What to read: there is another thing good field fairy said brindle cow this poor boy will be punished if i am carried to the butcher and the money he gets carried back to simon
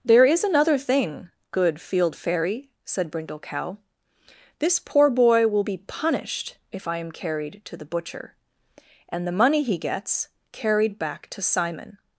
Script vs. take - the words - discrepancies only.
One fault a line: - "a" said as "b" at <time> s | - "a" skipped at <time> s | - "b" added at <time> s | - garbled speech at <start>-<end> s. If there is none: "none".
none